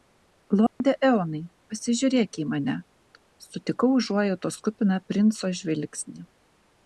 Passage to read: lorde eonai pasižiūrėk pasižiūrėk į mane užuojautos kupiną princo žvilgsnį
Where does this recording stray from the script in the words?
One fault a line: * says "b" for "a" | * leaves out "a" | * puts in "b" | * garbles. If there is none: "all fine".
* leaves out "pasižiūrėk"
* puts in "sutikau"